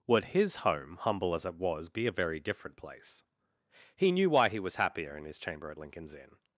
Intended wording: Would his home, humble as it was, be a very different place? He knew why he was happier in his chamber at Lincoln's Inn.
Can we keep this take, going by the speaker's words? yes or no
yes